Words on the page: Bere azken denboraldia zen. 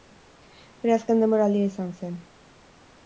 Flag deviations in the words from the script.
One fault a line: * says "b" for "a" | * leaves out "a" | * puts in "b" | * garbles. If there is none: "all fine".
* puts in "izan"